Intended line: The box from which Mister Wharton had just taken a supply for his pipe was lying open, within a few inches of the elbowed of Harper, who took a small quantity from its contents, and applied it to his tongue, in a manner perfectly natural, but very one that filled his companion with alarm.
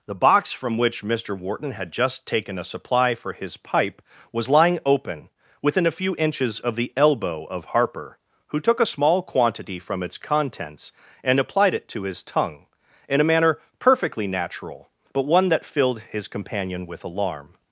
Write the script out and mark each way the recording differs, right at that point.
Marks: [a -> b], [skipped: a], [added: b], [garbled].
The box from which Mister Wharton had just taken a supply for his pipe was lying open, within a few inches of the [elbowed -> elbow] of Harper, who took a small quantity from its contents, and applied it to his tongue, in a manner perfectly natural, but [skipped: very] one that filled his companion with alarm.